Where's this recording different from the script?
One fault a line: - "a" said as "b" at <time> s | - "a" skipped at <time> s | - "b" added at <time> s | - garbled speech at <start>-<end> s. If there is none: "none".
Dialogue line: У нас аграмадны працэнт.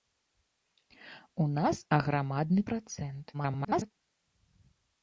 - garbled speech at 3.3-3.9 s